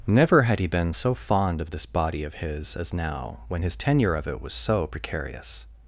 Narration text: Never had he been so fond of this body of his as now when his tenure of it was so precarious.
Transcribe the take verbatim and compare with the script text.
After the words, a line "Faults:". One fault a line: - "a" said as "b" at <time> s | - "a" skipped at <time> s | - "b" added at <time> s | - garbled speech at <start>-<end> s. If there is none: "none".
Never had he been so fond of this body of his as now when his tenure of it was so precarious.
Faults:
none